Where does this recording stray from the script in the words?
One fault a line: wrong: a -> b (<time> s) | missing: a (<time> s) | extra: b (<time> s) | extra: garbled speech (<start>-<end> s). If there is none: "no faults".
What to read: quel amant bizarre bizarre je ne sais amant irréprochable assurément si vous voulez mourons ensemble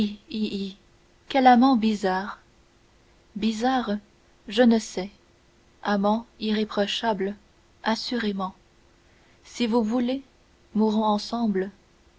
no faults